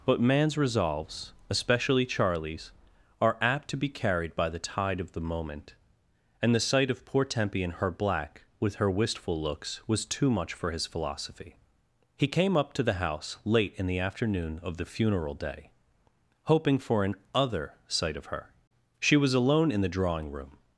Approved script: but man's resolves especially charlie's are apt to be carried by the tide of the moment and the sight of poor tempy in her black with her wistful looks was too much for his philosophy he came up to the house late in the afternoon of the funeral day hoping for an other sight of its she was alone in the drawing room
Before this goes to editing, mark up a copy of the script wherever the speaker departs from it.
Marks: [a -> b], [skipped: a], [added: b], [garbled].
but man's resolves especially charlie's are apt to be carried by the tide of the moment and the sight of poor tempy in her black with her wistful looks was too much for his philosophy he came up to the house late in the afternoon of the funeral day hoping for an other sight of [its -> her] she was alone in the drawing room